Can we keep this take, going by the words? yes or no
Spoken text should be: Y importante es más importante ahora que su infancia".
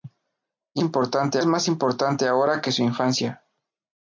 yes